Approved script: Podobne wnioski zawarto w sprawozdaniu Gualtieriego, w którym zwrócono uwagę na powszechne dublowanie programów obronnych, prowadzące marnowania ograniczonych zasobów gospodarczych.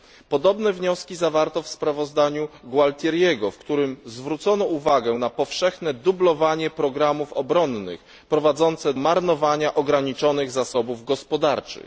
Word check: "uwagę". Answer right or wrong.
right